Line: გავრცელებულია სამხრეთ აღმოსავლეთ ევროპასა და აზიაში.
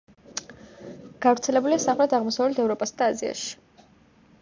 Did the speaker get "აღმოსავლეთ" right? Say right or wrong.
right